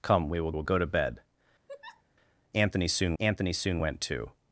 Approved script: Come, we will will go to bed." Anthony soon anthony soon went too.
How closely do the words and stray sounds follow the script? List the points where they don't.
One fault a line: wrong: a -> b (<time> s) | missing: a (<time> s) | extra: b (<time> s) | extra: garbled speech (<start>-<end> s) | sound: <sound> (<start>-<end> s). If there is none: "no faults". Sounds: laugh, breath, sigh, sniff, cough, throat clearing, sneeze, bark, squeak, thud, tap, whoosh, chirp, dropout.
sound: laugh (1.7-2.0 s)